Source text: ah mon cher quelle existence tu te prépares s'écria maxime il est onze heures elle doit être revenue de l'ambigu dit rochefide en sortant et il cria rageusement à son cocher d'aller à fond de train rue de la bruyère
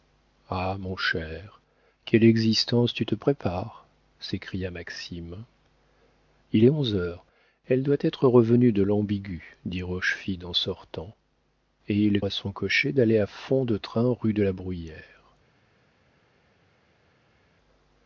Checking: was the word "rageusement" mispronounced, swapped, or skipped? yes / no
yes